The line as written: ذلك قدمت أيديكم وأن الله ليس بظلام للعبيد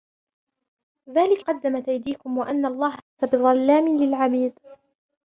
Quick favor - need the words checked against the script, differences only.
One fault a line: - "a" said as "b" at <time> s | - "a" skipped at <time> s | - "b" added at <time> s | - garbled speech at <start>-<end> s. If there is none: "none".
none